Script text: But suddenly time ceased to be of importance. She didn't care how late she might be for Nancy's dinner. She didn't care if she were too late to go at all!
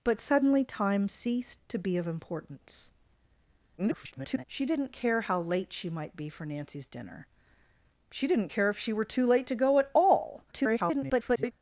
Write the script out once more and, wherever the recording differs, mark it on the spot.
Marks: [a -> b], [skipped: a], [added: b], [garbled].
But suddenly time ceased to be of importance. [garbled] She didn't care how late she might be for Nancy's dinner. She didn't care if she were too late to go at all! [garbled]